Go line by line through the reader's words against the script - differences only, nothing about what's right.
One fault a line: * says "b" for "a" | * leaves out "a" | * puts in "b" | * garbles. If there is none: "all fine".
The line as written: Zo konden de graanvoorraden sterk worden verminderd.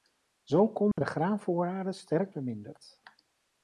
* leaves out "worden"